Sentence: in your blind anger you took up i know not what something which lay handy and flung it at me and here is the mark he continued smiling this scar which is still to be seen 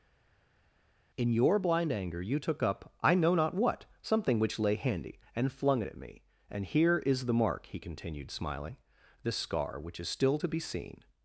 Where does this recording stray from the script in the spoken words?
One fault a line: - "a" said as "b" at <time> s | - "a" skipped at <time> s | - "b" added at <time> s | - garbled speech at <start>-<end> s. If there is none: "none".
none